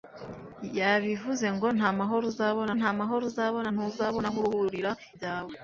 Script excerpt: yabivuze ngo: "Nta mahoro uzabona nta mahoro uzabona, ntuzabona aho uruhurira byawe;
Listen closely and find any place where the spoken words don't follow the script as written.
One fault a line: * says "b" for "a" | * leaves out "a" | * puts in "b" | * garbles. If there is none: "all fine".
all fine